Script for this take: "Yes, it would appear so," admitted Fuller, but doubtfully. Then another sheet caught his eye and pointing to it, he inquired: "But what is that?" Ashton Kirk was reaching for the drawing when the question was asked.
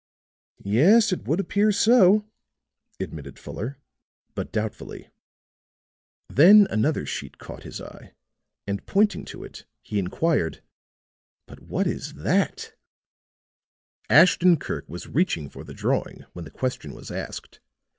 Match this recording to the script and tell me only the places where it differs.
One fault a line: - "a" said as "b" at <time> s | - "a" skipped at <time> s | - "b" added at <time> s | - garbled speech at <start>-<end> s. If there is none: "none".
none